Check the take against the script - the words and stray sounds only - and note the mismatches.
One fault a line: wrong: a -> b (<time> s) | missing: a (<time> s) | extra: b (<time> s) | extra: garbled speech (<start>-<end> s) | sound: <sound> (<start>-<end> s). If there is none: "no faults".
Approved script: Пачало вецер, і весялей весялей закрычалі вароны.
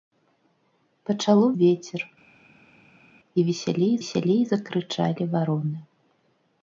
no faults